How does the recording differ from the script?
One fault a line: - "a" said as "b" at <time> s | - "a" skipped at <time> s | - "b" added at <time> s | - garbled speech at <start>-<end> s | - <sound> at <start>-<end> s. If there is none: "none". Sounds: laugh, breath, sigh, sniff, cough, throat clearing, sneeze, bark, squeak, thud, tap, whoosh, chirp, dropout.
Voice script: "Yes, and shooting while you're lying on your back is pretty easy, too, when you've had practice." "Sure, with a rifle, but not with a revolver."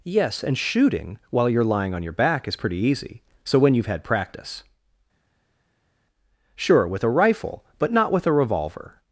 - "too" said as "so" at 3.4 s